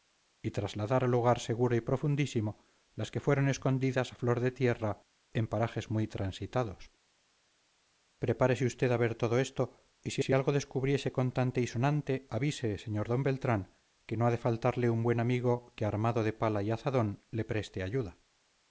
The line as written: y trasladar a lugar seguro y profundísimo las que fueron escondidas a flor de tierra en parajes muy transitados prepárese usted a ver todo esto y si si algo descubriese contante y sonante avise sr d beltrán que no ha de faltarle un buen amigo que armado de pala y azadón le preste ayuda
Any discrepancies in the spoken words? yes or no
no